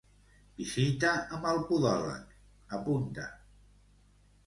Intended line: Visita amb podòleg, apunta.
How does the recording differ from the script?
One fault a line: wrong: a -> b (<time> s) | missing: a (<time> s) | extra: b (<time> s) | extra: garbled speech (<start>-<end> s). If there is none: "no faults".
extra: el (1.5 s)